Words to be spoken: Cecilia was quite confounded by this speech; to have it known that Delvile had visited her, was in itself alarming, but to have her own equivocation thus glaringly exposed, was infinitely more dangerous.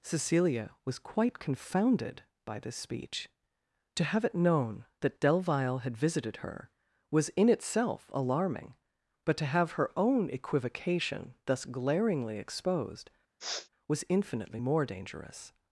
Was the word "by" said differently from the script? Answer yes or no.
no